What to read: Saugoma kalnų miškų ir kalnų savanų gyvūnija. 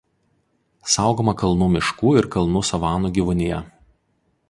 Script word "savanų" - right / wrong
right